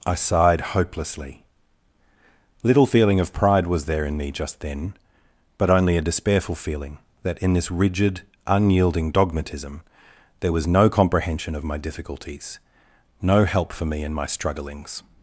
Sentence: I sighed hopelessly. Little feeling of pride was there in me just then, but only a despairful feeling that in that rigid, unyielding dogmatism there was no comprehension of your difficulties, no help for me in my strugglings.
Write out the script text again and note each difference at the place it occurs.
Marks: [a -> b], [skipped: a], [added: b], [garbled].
I sighed hopelessly. Little feeling of pride was there in me just then, but only a despairful feeling that in [that -> this] rigid, unyielding dogmatism there was no comprehension of [your -> my] difficulties, no help for me in my strugglings.